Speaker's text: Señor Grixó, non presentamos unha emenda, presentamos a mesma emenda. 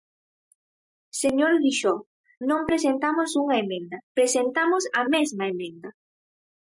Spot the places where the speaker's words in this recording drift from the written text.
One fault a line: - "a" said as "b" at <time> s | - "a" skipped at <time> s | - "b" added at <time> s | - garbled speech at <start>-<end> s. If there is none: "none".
none